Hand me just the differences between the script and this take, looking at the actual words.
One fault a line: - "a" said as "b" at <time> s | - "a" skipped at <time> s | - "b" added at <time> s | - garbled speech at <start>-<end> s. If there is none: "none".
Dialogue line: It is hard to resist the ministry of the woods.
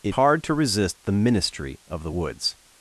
- "is" skipped at 0.1 s